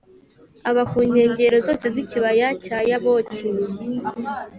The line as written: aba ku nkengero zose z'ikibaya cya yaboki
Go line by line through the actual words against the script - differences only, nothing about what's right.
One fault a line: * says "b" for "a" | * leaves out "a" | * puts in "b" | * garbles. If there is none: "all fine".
all fine